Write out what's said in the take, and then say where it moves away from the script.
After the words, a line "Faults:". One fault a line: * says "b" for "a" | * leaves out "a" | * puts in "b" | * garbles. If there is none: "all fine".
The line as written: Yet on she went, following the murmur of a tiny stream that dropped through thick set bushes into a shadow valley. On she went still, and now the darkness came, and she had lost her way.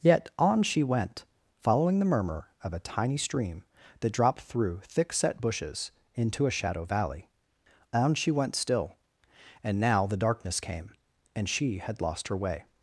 Yet on she went, following the murmur of a tiny stream that dropped through thick set bushes into a shadow valley. On she went still, and now the darkness came, and she had lost her way.
Faults:
all fine